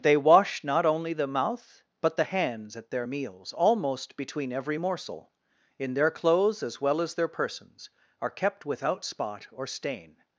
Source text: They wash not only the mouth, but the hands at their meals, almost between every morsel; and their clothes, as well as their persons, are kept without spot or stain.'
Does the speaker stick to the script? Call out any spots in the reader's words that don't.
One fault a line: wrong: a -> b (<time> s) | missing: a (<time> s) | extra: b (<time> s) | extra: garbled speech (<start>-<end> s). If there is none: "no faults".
wrong: and -> in (5.8 s)